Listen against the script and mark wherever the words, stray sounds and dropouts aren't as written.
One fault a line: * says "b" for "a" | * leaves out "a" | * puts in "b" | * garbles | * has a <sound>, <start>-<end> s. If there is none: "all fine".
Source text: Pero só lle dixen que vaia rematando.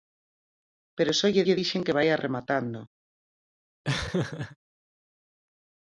* puts in "lle"
* has a laugh, 3.8-4.6 s